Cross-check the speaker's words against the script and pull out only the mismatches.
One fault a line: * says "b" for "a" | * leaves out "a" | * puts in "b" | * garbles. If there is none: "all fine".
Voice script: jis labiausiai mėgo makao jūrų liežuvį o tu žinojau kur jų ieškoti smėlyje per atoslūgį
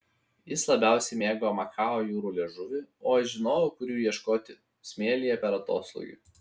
* says "aš" for "tu"